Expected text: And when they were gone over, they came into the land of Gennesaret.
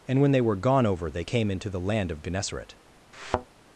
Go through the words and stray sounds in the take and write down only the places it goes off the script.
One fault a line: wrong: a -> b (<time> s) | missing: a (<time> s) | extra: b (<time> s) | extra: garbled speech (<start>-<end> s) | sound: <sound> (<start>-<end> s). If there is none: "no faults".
sound: thud (3.1-3.5 s)